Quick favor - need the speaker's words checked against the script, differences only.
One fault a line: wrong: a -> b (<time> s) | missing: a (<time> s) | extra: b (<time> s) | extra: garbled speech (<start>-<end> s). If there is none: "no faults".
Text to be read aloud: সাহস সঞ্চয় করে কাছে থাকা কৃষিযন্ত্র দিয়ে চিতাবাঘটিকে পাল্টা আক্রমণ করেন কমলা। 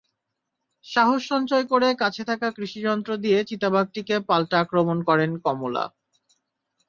no faults